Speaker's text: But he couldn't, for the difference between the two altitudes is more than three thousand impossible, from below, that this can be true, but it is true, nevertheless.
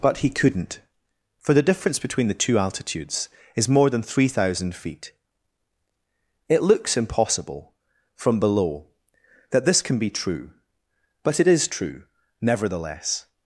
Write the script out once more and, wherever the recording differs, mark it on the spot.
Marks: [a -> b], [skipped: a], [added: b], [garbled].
But he couldn't, for the difference between the two altitudes is more than three thousand [added: feet It looks] impossible, from below, that this can be true, but it is true, nevertheless.